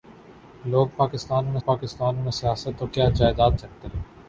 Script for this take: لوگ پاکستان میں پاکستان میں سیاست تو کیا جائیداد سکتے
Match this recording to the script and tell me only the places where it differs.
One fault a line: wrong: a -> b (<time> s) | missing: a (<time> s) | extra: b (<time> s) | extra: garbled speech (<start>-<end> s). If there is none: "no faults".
no faults